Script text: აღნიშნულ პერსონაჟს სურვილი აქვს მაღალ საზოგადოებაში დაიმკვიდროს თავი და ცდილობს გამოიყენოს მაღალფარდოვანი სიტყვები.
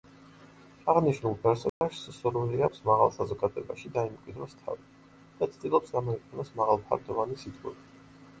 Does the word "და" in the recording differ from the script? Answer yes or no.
no